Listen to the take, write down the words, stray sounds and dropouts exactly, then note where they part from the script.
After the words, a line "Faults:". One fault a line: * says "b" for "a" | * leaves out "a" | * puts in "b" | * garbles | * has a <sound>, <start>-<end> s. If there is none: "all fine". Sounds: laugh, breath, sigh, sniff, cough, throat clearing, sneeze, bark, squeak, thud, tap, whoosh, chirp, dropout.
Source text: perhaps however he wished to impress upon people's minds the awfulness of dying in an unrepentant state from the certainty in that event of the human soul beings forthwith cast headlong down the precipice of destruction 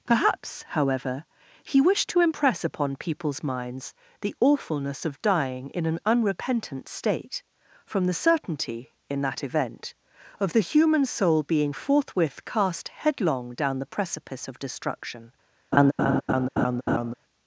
perhaps however he wished to impress upon people's minds the awfulness of dying in an unrepentant state from the certainty in that event of the human soul being forthwith cast headlong down the precipice of destruction
Faults:
* says "being" for "beings"
* has a laugh, 15.7-17.1 s